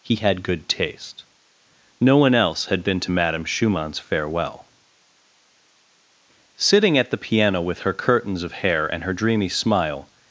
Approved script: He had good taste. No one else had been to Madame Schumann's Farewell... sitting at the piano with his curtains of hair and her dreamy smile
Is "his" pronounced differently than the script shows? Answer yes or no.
yes